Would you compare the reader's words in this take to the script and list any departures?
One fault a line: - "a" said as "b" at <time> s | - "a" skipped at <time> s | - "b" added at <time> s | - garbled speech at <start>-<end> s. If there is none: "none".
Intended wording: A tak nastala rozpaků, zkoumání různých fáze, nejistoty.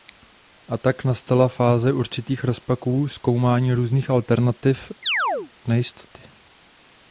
- "fáze určitých" added at 1.5 s
- "fáze" said as "alternativ" at 4.1 s